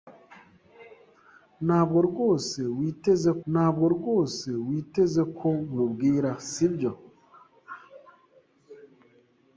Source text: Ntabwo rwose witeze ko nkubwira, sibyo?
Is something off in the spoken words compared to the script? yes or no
yes